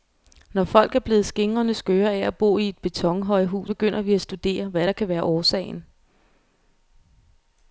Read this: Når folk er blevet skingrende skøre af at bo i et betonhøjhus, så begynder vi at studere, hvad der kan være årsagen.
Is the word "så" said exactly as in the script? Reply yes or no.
no